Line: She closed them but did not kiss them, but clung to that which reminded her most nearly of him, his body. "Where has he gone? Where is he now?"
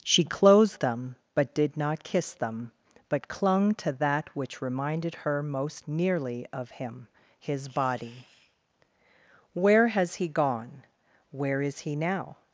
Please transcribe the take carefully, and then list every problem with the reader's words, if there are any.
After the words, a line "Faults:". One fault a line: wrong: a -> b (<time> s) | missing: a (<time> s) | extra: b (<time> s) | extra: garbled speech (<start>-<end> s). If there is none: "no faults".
She closed them but did not kiss them, but clung to that which reminded her most nearly of him, his body. "Where has he gone? Where is he now?"
Faults:
no faults